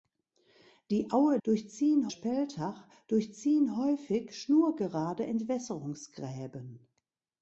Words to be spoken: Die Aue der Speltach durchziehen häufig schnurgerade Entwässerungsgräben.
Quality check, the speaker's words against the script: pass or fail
fail